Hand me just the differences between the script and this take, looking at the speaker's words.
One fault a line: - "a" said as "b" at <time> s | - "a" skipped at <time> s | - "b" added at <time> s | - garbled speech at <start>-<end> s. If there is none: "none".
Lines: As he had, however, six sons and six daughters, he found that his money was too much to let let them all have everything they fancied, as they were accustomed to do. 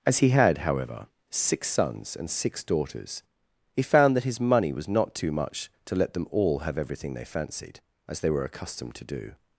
- "not" added at 4.9 s
- "let" skipped at 6.1 s